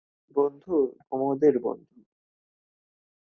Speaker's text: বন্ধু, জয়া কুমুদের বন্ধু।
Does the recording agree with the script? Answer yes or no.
no